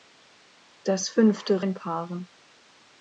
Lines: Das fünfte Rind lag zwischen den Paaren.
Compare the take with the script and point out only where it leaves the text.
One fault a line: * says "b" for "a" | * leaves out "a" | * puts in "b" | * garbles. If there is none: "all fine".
* leaves out "Rind lag zwischen"